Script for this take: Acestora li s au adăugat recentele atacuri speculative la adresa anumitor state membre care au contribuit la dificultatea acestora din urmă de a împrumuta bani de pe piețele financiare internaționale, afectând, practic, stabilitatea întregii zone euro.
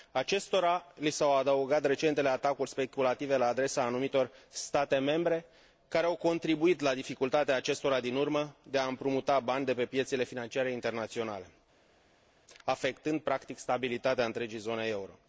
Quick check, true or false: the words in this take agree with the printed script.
true